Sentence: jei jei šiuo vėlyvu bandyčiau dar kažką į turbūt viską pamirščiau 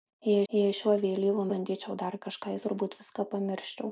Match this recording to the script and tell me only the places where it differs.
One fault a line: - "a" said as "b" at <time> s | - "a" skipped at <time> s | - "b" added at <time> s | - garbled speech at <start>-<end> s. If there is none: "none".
none